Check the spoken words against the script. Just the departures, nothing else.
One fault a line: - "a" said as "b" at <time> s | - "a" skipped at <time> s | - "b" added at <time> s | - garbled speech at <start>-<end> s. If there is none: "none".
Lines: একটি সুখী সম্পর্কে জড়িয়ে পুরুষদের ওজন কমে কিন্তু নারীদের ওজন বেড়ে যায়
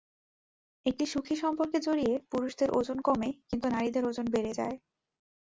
none